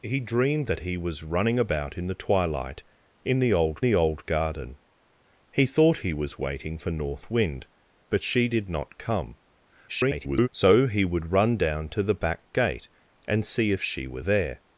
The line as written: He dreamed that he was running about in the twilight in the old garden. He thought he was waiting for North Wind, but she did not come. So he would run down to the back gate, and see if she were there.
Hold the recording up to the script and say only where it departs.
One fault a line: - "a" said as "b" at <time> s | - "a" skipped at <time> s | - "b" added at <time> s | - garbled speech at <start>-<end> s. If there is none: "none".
- "the old" added at 3.8 s
- garbled speech at 9.9-10.5 s